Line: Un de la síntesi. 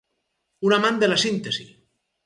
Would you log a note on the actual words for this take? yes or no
yes